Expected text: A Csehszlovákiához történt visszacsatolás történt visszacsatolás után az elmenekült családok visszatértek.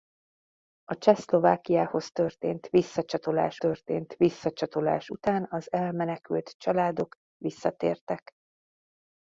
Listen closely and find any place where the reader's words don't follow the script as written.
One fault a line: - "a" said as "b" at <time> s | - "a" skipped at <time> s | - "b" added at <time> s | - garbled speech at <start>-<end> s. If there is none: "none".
none